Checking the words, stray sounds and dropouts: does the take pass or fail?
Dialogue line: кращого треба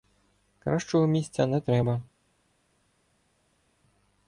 fail